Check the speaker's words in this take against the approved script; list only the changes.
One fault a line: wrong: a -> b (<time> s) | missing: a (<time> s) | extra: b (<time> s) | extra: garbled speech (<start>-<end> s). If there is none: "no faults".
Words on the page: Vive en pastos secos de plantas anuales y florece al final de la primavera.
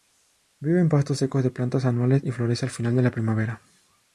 no faults